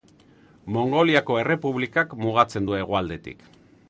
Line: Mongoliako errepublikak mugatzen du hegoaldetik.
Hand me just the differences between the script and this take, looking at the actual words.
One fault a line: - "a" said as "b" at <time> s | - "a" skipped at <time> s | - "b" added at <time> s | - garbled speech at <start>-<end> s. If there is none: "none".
none